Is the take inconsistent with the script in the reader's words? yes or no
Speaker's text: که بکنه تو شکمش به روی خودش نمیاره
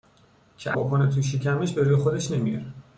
no